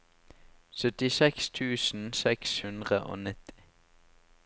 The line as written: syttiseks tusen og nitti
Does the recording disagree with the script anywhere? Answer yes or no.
yes